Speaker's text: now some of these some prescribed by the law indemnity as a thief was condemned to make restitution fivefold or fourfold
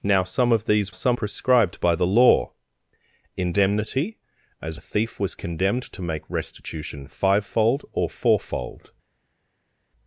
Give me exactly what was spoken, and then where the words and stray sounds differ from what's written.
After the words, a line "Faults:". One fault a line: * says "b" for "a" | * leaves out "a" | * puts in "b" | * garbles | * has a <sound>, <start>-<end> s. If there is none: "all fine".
now some of these some prescribed by the law indemnity as a thief was condemned to make restitution fivefold or fourfold
Faults:
all fine